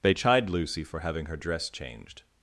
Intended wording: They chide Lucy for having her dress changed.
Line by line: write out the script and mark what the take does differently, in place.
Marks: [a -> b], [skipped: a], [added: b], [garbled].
They chide Lucy for having her dress changed.